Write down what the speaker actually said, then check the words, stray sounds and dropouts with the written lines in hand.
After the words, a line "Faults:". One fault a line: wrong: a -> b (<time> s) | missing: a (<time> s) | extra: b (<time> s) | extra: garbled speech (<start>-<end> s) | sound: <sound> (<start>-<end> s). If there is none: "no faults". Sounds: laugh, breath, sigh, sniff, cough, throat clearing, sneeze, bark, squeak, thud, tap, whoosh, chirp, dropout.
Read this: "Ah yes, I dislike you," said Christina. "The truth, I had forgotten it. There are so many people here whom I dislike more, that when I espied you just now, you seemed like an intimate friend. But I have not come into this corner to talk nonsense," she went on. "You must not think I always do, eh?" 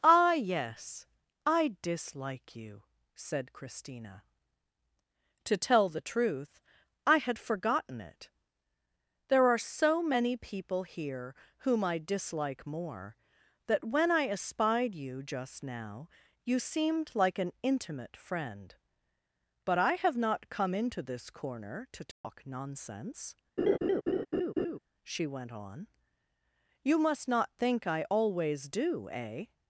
"Ah yes, I dislike you," said Christina. "To tell the truth, I had forgotten it. There are so many people here whom I dislike more, that when I espied you just now, you seemed like an intimate friend. But I have not come into this corner to talk nonsense," she went on. "You must not think I always do, eh?"
Faults:
extra: To tell (5.4 s)
sound: dropout (22.1-22.2 s)
sound: laugh (23.6-24.8 s)